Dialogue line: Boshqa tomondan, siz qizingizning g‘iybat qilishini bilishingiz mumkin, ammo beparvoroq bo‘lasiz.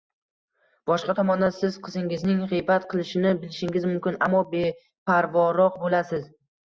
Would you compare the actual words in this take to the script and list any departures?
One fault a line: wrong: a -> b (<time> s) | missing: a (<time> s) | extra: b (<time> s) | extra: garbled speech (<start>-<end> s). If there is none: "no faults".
no faults